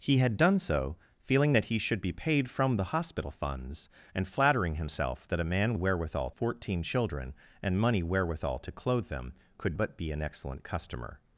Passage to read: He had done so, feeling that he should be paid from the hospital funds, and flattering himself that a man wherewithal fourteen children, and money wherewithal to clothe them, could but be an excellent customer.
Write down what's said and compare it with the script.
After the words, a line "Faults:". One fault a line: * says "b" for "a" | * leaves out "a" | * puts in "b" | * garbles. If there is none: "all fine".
He had done so, feeling that he should be paid from the hospital funds, and flattering himself that a man wherewithal fourteen children, and money wherewithal to clothe them, could but be an excellent customer.
Faults:
all fine